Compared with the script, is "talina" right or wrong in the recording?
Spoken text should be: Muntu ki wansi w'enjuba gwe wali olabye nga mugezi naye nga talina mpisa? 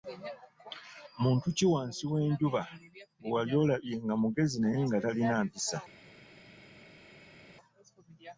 right